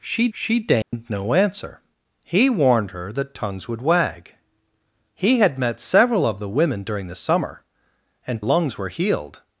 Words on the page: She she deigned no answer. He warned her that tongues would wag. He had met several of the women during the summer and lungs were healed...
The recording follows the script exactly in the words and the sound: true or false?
false